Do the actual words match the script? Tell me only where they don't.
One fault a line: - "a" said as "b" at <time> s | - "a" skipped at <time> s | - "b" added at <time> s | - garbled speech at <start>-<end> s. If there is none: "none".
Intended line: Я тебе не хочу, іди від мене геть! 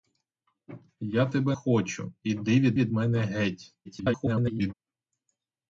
- "не" skipped at 1.6 s
- "від" added at 2.7 s
- garbled speech at 3.8-4.7 s